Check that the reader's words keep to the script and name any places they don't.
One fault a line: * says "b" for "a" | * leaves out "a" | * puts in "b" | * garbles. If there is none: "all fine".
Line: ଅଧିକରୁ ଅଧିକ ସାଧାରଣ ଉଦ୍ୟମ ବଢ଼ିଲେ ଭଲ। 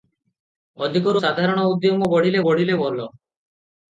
* leaves out "ଅଧିକ"
* puts in "ବଢ଼ିଲେ"